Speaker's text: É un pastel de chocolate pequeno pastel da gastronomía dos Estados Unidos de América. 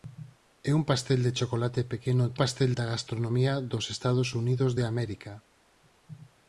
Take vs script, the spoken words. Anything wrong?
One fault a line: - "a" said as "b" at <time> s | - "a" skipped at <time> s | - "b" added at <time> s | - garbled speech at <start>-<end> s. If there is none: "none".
none